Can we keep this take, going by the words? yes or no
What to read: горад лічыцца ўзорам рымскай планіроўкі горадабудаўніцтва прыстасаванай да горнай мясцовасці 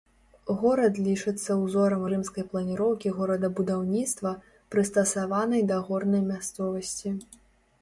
yes